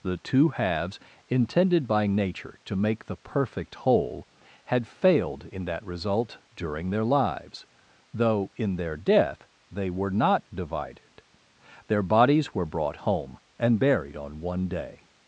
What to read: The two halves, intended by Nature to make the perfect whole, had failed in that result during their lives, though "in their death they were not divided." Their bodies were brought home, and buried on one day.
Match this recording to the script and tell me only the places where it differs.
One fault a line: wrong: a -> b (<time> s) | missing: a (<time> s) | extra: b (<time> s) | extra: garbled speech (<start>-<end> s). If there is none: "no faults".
no faults